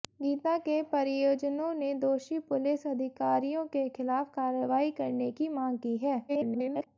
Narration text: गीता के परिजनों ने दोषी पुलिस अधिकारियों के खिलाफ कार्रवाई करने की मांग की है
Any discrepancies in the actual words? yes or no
yes